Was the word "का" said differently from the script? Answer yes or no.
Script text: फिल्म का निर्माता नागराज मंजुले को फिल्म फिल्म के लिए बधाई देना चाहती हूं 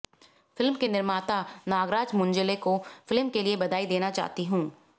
yes